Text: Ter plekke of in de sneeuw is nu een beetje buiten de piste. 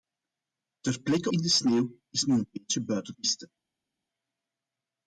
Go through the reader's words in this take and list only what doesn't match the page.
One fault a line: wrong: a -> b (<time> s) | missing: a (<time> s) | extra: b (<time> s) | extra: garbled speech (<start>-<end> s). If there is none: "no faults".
missing: of (1.3 s)
missing: de (3.1 s)